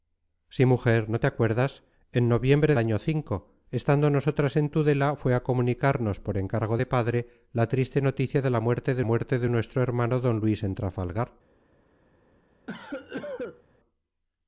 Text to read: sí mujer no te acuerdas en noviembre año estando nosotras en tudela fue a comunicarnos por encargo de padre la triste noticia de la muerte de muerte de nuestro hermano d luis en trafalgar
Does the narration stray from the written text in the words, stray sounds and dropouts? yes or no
yes